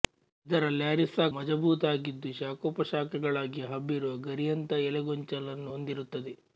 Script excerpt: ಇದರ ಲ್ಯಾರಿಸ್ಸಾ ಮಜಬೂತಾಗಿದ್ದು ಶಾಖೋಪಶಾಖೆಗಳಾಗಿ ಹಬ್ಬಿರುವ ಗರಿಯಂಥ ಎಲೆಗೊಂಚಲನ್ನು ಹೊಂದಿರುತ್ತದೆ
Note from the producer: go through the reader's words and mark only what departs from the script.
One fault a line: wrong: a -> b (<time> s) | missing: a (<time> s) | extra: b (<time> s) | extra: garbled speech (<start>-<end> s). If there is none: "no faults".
no faults